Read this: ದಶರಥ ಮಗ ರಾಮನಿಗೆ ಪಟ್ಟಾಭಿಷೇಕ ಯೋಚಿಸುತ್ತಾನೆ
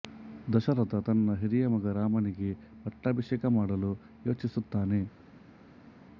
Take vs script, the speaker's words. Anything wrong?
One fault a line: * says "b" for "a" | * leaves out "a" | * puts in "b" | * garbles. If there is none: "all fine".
* puts in "ತನ್ನ ಹಿರಿಯ"
* puts in "ಮಾಡಲು"